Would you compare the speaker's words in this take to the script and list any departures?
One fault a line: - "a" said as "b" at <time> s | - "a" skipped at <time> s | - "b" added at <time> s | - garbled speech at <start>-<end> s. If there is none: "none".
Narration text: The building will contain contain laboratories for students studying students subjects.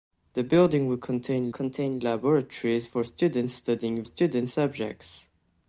none